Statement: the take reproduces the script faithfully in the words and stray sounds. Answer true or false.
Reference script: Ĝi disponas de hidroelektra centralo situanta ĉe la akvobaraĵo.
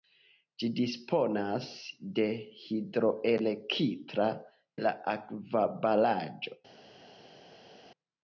false